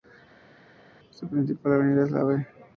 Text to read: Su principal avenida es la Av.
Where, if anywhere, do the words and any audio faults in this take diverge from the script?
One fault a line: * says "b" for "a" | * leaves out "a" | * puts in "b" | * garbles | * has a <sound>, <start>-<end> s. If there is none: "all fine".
all fine